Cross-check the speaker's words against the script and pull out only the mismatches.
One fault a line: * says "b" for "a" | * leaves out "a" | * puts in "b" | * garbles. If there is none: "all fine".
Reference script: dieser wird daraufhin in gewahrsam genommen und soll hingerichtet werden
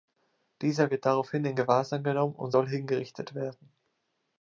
all fine